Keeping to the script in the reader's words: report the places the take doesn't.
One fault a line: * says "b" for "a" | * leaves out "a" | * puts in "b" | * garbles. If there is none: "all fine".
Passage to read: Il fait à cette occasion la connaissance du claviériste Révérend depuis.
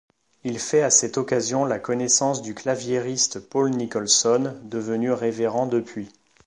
* puts in "Paul Nicholson devenu"